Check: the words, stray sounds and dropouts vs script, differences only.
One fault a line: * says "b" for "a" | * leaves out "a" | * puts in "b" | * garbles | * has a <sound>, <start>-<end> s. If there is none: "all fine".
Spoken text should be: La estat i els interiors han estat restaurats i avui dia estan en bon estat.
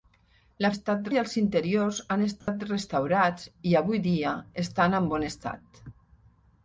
* has a dropout, 2.4-2.5 s